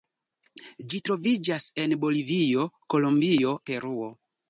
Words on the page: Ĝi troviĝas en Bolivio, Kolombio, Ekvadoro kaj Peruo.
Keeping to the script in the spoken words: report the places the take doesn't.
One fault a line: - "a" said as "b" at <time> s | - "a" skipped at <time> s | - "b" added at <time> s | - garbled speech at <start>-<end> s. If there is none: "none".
- "Ekvadoro kaj" skipped at 3.5 s